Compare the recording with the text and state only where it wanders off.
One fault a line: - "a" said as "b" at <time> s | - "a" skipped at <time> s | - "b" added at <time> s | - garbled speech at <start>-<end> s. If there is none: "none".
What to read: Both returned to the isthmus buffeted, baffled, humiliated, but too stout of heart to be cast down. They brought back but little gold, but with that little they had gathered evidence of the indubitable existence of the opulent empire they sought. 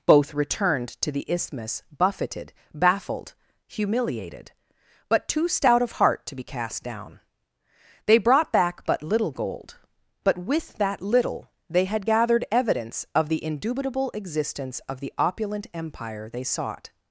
none